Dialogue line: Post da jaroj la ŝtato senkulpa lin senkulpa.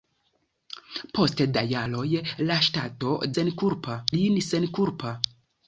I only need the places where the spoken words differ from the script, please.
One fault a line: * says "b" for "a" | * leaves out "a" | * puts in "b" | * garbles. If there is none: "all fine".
all fine